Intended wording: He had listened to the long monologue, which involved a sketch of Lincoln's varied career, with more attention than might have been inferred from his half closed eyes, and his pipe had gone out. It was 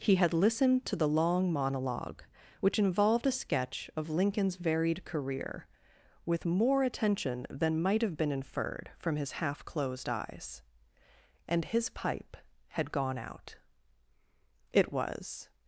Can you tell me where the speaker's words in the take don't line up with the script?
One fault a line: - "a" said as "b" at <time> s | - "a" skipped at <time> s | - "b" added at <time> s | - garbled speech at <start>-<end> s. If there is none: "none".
none